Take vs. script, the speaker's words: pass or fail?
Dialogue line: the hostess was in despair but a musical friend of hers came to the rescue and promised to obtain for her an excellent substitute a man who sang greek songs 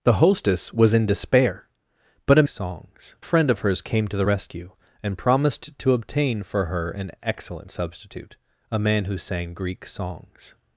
fail